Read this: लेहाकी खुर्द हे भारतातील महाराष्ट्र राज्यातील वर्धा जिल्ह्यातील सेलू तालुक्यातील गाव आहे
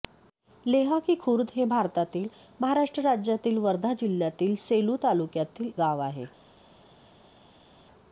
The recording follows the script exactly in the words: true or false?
true